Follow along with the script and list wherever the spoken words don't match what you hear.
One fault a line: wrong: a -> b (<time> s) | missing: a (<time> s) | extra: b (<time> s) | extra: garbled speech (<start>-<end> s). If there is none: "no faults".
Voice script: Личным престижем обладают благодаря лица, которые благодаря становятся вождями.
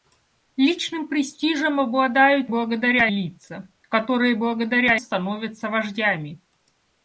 no faults